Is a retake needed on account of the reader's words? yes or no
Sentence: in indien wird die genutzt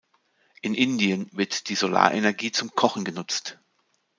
yes